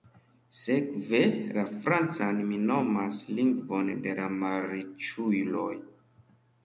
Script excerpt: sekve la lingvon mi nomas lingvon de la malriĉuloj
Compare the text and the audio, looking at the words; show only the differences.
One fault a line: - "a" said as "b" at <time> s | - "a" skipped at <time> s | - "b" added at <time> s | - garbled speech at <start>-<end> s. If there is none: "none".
- "lingvon" said as "francan" at 1.8 s